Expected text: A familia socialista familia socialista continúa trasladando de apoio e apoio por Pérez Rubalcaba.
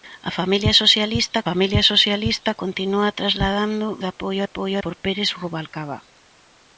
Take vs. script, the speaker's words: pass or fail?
pass